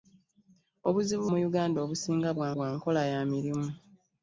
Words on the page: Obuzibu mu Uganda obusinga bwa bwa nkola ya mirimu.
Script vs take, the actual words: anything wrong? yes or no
no